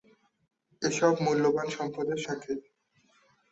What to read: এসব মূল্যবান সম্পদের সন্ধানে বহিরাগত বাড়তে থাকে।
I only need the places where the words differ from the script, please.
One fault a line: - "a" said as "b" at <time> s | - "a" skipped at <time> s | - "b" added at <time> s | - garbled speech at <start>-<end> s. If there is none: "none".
- "সন্ধানে বহিরাগত বাড়তে" skipped at 2.2 s